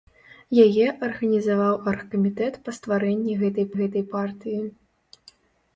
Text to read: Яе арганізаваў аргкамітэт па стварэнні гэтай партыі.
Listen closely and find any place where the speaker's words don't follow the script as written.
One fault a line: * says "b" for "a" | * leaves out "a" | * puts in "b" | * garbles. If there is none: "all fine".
* puts in "гэтай"